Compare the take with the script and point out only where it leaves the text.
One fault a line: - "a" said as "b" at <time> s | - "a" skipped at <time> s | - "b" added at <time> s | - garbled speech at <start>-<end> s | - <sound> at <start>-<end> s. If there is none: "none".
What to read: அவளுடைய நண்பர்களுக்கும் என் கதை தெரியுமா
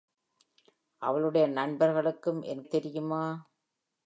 - "கதை" skipped at 2.6 s